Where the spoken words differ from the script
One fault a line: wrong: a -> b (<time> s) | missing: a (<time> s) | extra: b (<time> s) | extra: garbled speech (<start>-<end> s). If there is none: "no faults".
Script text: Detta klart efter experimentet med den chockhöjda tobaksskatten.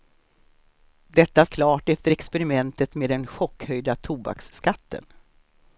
no faults